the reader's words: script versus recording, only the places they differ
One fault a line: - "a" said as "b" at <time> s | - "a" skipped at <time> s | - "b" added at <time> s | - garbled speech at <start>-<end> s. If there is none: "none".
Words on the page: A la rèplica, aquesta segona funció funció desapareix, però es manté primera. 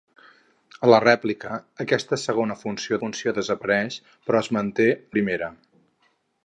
none